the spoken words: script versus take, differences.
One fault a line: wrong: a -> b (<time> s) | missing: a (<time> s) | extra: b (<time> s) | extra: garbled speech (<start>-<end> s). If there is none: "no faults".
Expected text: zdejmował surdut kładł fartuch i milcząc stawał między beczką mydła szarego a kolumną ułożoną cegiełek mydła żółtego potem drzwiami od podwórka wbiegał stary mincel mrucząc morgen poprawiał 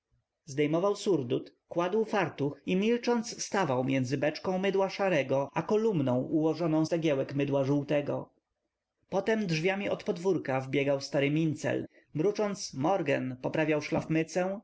no faults